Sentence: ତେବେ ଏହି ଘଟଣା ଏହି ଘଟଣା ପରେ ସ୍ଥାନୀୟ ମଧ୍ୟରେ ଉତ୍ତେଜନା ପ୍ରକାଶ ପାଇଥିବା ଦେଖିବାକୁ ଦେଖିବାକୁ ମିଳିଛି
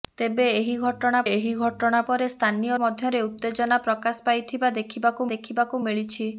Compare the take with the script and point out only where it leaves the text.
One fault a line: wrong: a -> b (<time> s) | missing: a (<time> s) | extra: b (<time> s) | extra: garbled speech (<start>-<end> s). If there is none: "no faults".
no faults